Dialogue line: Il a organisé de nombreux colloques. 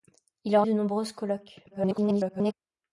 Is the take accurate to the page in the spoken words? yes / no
no